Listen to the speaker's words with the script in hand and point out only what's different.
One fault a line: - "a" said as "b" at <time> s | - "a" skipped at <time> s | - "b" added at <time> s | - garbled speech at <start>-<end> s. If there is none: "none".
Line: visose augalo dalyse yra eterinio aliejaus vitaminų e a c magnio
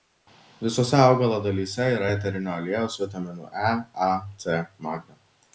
none